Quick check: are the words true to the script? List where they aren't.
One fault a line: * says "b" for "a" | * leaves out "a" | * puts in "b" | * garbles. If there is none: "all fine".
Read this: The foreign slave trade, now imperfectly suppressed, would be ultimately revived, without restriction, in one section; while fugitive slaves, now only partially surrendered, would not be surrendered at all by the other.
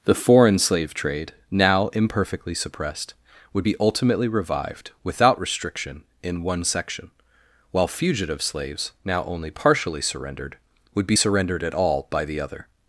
* leaves out "not"